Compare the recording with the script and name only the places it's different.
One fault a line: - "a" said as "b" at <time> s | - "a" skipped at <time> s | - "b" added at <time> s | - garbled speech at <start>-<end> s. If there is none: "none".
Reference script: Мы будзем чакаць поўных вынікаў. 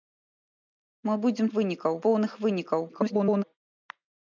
- "чакаць" said as "вынікаў" at 1.6 s
- garbled speech at 2.9-3.4 s